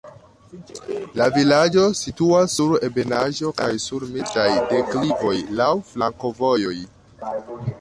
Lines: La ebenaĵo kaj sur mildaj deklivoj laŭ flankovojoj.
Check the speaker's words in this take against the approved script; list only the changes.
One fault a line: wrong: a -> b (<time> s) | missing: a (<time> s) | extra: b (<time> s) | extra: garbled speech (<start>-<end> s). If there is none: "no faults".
extra: vilaĝo situas sur (1.3 s)